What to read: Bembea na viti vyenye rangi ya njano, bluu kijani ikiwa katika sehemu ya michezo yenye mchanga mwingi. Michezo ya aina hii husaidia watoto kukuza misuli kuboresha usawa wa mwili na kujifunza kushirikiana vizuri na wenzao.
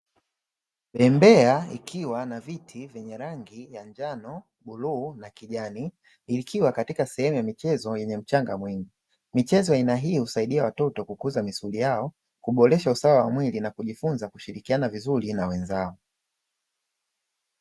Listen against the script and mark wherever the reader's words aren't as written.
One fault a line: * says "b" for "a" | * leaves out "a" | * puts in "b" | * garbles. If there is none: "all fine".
* puts in "ikiwa"
* puts in "na"
* puts in "yao"